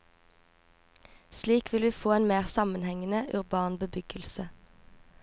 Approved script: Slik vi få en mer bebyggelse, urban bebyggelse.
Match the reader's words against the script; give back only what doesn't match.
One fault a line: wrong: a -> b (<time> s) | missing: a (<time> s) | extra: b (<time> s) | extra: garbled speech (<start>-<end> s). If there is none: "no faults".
extra: vil (1.7 s)
wrong: bebyggelse -> sammenhengende (2.4 s)